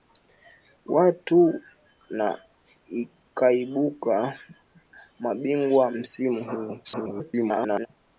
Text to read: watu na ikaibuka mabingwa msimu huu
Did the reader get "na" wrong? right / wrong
right